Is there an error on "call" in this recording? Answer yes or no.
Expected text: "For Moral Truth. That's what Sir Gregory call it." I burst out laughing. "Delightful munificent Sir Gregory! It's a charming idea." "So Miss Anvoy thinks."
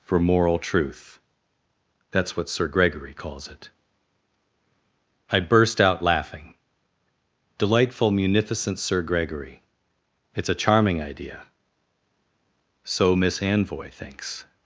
yes